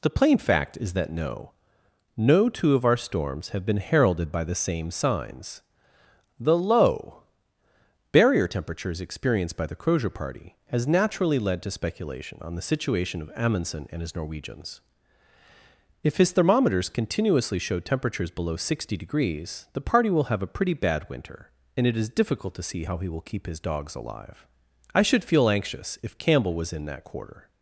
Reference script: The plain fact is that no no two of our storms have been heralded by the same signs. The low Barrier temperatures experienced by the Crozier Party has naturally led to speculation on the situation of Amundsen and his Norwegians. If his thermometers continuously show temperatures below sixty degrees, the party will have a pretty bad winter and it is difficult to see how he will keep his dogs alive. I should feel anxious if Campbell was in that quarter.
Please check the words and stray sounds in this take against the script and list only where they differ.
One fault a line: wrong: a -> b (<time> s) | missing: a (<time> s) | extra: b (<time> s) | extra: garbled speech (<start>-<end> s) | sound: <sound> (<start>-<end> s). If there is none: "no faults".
no faults